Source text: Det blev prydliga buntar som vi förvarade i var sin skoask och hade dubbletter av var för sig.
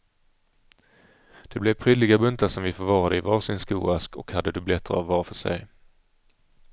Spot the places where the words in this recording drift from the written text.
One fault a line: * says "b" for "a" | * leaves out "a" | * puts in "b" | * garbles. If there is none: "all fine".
all fine